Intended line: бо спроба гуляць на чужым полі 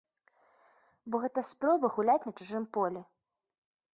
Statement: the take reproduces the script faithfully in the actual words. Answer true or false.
false